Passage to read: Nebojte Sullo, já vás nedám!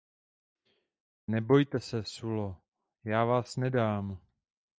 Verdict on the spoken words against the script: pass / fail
fail